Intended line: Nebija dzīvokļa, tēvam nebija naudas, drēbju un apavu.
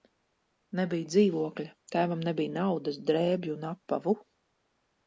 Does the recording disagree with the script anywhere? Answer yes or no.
no